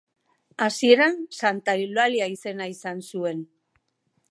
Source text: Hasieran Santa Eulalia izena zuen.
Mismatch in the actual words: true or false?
true